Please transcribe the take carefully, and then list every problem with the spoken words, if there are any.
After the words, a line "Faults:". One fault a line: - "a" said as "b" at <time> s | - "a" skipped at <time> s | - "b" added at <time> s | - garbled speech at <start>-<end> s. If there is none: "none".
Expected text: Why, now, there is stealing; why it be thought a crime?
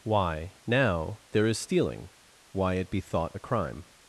Why, now, there is stealing; why it be thought a crime?
Faults:
none